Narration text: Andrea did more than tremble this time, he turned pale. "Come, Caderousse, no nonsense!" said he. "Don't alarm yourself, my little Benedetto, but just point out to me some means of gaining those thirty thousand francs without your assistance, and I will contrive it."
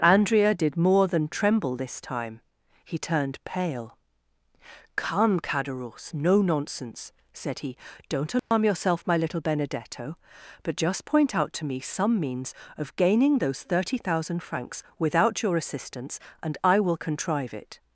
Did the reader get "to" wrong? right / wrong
right